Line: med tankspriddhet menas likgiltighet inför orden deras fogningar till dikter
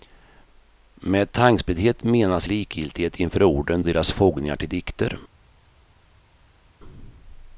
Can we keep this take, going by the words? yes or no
yes